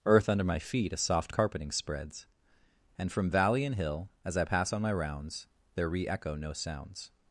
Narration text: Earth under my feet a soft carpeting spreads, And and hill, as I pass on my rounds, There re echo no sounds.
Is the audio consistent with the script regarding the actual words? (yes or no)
no